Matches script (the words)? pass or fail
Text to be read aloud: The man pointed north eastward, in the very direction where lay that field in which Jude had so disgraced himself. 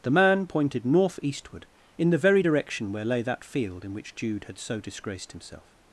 pass